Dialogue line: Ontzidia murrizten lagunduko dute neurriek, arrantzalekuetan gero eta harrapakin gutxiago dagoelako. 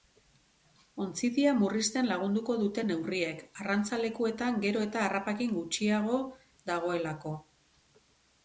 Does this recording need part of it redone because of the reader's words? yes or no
no